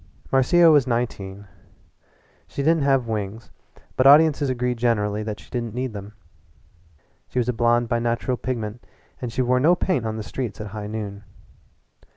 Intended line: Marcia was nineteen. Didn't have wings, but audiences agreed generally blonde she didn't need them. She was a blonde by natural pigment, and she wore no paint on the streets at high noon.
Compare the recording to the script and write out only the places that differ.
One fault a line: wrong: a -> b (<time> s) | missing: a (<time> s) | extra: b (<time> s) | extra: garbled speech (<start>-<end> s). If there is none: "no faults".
extra: She (2.5 s)
wrong: blonde -> that (5.2 s)